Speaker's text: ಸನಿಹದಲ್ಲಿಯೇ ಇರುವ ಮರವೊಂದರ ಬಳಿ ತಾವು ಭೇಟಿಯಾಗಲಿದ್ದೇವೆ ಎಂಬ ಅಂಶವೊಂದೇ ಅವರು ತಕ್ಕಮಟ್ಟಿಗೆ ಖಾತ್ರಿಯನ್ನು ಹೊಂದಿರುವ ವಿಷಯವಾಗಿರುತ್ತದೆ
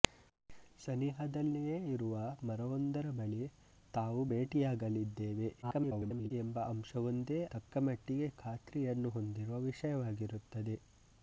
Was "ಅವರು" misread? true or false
true